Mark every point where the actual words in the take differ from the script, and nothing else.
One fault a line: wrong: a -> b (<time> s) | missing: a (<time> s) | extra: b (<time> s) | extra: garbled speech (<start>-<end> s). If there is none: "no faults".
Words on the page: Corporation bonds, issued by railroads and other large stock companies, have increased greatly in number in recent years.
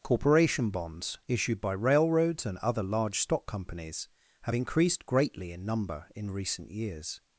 no faults